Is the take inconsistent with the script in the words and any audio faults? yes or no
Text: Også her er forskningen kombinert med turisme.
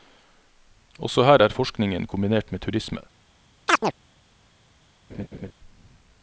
yes